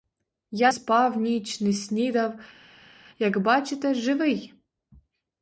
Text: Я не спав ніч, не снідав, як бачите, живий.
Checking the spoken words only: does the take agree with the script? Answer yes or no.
no